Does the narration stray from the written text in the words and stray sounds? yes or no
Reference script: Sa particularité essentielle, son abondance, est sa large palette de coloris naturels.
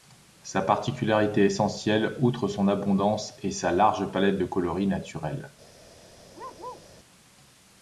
yes